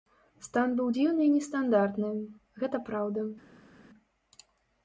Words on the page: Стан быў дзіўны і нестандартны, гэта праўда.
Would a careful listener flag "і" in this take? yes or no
no